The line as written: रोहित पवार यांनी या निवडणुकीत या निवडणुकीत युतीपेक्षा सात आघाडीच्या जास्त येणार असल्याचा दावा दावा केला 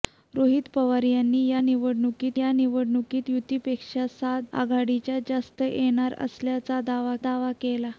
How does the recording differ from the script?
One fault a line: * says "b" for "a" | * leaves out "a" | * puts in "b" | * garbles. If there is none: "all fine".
all fine